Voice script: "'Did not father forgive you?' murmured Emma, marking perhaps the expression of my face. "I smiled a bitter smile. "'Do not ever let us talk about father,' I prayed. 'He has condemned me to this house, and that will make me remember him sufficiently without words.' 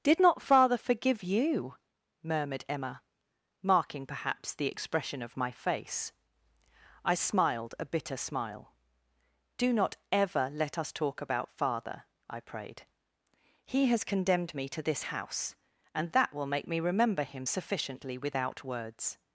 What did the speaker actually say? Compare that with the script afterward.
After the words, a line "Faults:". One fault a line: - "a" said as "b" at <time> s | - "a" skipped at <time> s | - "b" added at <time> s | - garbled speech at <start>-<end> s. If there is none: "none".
"'Did not father forgive you?' murmured Emma, marking perhaps the expression of my face. "I smiled a bitter smile. "'Do not ever let us talk about father,' I prayed. 'He has condemned me to this house, and that will make me remember him sufficiently without words.'
Faults:
none